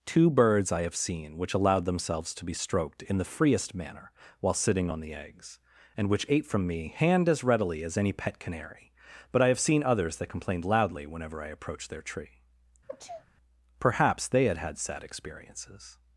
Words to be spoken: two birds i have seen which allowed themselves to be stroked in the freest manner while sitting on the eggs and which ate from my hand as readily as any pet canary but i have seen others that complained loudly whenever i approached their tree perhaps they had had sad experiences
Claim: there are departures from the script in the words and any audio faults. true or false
true